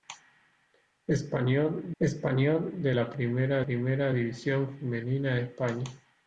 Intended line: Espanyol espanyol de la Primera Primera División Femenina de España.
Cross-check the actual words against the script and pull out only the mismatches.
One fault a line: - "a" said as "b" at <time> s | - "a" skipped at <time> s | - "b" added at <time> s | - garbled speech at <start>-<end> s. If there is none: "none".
none